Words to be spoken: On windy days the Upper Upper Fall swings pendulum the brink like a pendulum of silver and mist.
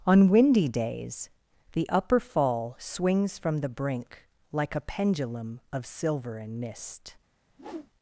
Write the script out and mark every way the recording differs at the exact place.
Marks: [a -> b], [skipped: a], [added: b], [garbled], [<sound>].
On windy days the Upper [skipped: Upper] Fall swings [pendulum -> from] the brink like a pendulum of silver and mist. [whoosh]